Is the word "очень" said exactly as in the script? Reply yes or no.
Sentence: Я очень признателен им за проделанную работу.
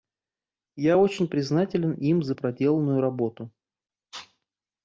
yes